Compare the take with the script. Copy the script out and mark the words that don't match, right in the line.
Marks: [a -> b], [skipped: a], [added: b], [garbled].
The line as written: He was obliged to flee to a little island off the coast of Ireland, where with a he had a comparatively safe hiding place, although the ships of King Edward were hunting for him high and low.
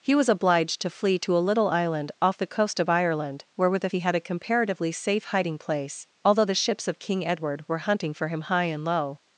He was obliged to flee to a little island off the coast of Ireland, where with a he had a comparatively safe hiding place, although the ships of King Edward were hunting for him high and low.